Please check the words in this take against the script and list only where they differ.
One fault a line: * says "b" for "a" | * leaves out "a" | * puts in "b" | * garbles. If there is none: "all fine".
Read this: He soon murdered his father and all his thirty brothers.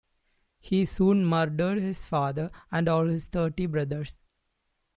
all fine